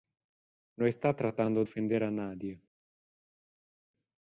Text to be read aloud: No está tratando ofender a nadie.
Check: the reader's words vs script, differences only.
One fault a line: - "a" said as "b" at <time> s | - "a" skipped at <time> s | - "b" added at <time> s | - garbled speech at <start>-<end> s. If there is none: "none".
none